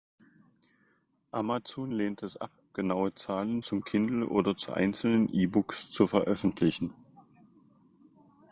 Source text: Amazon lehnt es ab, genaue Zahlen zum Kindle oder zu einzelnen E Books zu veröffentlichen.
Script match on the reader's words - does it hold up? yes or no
yes